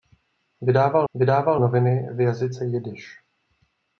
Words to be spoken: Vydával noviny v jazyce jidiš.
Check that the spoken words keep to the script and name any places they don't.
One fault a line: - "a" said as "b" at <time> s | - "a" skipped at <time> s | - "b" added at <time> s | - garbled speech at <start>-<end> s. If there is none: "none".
- "vydával" added at 1.1 s